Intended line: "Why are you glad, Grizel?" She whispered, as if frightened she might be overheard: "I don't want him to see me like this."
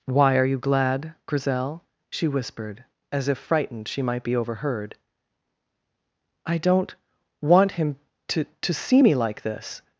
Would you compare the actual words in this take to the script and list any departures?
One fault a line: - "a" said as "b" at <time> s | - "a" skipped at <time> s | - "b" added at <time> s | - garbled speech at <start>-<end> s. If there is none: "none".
- "to" added at 8.4 s